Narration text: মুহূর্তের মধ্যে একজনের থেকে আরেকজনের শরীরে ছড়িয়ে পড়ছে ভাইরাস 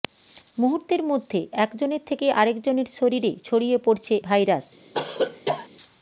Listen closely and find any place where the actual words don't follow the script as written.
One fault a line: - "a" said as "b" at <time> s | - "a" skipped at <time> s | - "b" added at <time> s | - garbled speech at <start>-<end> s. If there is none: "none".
none